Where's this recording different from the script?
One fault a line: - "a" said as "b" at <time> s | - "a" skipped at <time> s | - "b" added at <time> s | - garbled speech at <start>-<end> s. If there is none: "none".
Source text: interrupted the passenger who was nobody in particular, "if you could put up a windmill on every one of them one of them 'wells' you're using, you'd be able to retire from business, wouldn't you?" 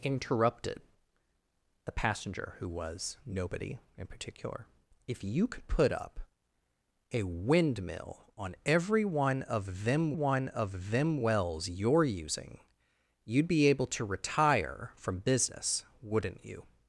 none